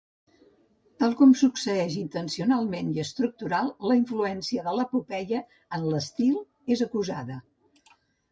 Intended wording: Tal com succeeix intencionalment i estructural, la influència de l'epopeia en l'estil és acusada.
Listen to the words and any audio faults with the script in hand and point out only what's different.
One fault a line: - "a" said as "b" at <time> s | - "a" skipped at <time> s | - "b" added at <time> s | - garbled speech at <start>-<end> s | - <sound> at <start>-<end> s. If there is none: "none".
none